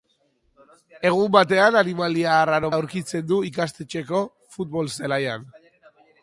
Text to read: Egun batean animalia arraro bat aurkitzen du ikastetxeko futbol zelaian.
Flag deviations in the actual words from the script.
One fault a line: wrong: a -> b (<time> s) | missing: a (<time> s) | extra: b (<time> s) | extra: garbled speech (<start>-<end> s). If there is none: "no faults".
missing: bat (2.7 s)